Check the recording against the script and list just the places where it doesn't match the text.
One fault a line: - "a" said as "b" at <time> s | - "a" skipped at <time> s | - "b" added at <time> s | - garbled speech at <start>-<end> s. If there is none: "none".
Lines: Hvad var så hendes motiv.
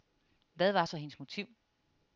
none